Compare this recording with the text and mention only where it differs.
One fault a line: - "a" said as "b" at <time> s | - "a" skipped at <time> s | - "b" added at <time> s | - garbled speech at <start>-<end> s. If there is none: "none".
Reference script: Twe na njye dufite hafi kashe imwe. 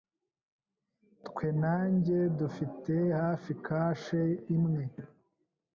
none